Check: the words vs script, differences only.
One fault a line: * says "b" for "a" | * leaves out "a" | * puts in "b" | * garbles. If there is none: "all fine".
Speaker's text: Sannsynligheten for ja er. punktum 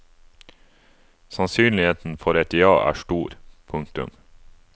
* puts in "et"
* puts in "stor"